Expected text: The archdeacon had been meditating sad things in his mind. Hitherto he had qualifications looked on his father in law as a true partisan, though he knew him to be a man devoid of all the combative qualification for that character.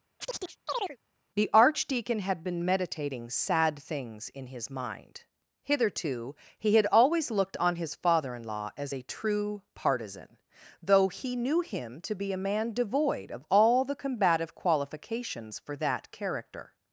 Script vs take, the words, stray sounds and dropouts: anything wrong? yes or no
yes